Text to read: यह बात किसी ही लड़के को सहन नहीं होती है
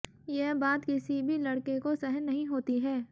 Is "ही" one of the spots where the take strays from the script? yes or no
yes